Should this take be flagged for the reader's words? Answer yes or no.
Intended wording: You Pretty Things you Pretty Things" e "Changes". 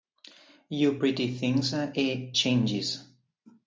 yes